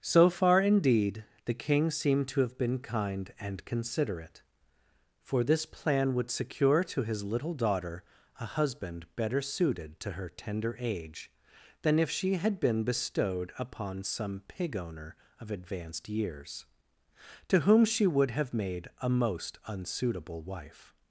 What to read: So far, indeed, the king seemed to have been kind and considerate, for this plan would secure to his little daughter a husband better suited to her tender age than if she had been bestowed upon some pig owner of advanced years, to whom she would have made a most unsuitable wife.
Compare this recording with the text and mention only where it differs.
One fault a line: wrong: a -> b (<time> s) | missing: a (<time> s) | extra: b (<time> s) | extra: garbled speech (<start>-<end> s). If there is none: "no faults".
no faults